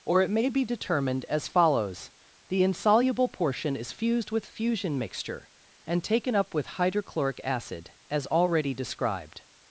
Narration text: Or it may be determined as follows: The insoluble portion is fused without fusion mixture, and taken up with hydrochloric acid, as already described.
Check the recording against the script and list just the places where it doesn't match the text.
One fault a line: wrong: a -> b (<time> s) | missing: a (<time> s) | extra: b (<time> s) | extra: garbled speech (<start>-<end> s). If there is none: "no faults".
wrong: without -> with (4.3 s)